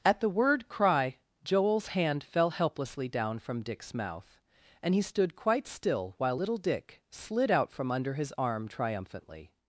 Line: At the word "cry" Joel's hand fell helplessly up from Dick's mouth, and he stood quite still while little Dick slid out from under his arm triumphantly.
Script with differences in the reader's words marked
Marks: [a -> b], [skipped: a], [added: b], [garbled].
At the word "cry" Joel's hand fell helplessly [up -> down] from Dick's mouth, and he stood quite still while little Dick slid out from under his arm triumphantly.